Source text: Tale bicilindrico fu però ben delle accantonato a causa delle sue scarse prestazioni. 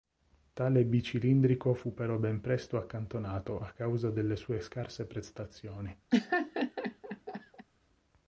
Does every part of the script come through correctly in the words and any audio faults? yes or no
no